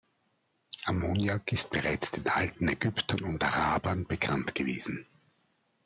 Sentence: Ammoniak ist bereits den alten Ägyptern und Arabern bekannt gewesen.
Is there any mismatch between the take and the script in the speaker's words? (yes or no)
no